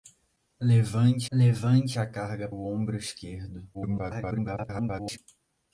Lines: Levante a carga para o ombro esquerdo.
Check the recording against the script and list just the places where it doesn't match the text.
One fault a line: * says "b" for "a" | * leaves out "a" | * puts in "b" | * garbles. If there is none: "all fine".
* puts in "levante"
* leaves out "para"
* garbles